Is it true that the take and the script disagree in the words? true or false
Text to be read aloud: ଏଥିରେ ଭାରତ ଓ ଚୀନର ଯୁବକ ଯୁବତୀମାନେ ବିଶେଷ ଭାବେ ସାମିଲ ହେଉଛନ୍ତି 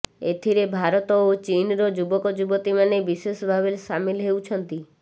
false